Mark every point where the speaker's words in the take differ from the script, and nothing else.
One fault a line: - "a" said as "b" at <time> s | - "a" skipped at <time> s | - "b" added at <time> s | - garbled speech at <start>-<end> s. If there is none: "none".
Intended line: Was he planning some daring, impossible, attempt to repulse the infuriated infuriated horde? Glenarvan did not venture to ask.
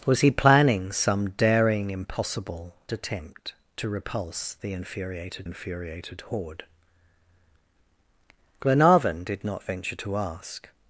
none